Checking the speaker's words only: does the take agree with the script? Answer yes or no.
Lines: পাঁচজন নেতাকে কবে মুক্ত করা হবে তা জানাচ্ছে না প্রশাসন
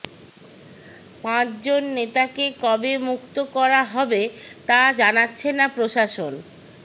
yes